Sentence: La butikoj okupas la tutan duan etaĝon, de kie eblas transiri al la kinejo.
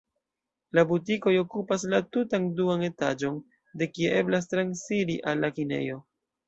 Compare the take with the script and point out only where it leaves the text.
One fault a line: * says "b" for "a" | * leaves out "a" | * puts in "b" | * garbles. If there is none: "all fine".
all fine